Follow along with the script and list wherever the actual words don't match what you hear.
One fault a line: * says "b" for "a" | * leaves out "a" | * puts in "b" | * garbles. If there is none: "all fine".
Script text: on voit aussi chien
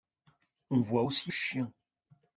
all fine